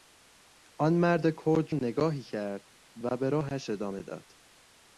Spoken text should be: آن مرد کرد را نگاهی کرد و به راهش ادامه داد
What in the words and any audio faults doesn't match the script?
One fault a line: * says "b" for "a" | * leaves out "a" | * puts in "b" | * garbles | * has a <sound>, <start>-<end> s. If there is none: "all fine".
* leaves out "را"